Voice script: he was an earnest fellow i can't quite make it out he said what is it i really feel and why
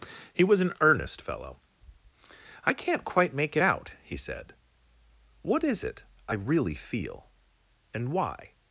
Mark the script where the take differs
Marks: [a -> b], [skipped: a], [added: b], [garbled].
he was an earnest fellow i can't quite make it out he said what is it i really feel and why